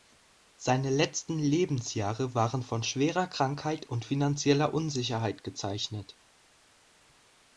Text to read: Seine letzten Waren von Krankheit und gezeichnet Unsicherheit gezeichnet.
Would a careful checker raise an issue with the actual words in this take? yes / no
yes